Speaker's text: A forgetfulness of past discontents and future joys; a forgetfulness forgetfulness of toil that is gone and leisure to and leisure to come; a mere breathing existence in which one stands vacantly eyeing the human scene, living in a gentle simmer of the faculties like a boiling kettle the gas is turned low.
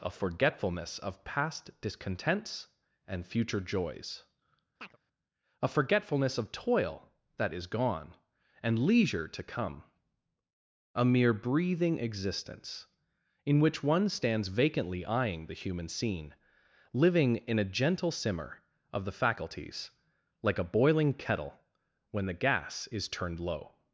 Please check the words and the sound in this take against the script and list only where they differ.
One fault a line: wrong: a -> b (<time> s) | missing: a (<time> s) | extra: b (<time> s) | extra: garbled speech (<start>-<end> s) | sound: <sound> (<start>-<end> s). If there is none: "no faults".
sound: chirp (4.8-5.0 s)
missing: forgetfulness (6.4 s)
missing: and leisure to (9.4 s)
extra: when (22.1 s)